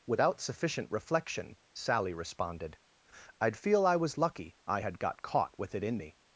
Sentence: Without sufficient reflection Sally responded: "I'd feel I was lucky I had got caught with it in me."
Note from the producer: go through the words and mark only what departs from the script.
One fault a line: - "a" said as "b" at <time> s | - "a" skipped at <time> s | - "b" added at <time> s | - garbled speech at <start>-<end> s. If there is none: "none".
none